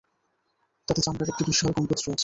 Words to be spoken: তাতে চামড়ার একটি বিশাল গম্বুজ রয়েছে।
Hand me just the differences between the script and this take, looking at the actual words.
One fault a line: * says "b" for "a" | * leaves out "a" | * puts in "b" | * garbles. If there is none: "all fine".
all fine